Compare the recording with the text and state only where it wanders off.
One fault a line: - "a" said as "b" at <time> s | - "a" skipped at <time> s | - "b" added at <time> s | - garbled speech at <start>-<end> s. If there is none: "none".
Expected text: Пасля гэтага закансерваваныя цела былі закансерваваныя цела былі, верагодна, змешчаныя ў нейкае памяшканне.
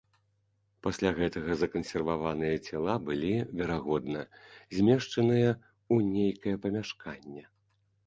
- "закансерваваныя цела былі" skipped at 3.3 s